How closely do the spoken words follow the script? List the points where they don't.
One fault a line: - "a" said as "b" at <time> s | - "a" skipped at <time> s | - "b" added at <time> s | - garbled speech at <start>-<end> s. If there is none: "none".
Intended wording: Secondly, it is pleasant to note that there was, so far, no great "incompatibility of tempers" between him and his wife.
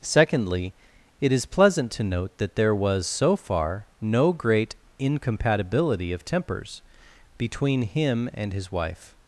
none